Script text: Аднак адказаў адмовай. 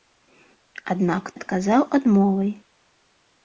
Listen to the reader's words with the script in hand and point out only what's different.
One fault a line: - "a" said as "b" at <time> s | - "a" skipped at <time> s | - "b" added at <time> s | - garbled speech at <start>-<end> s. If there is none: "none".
none